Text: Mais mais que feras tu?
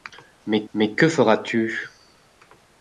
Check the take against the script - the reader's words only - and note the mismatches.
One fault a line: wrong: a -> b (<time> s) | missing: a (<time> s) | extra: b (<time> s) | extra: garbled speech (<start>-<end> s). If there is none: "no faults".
no faults